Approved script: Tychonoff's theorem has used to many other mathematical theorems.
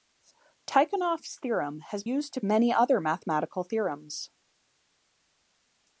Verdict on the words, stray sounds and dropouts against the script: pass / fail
pass